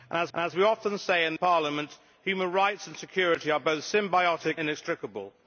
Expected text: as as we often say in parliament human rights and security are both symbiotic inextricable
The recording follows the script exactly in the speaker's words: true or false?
true